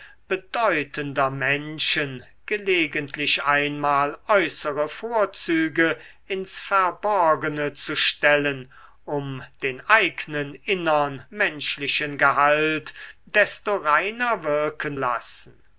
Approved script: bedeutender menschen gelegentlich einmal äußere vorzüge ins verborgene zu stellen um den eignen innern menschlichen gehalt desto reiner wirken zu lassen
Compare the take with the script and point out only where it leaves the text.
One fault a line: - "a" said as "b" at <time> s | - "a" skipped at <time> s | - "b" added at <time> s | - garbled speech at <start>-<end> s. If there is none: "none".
- "zu" skipped at 15.0 s